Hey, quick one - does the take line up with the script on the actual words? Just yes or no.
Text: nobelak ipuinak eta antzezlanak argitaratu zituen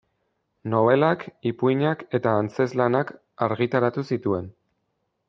yes